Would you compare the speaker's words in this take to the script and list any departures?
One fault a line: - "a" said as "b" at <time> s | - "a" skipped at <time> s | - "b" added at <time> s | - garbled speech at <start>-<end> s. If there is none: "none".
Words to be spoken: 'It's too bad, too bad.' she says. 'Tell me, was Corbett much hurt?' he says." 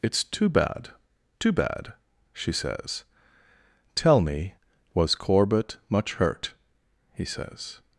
none